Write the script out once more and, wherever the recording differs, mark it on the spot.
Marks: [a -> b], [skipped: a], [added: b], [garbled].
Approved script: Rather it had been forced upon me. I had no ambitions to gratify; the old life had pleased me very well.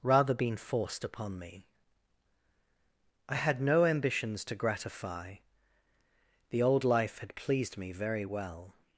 Rather [skipped: it had] been forced upon me. I had no ambitions to gratify; the old life had pleased me very well.